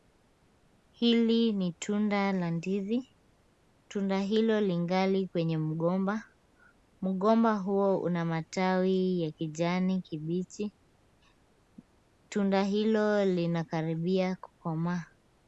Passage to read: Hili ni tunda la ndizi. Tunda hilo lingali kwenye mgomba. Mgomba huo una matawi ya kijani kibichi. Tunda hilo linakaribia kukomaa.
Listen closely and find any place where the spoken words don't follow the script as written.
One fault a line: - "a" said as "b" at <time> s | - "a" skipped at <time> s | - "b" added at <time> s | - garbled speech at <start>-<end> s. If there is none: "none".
none